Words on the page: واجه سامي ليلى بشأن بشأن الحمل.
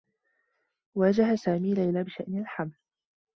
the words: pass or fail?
fail